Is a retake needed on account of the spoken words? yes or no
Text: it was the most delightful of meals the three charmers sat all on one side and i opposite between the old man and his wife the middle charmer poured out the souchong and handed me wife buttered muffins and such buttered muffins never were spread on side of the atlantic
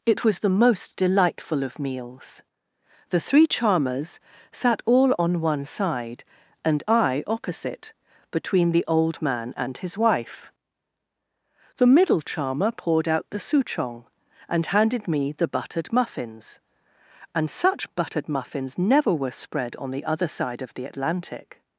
yes